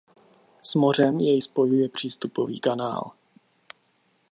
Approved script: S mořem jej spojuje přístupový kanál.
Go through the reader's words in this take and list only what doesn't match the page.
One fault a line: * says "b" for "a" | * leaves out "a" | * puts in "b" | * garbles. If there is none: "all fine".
all fine